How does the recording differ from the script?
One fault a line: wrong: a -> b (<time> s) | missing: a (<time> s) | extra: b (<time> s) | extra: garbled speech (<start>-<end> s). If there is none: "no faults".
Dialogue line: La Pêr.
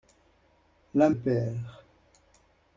no faults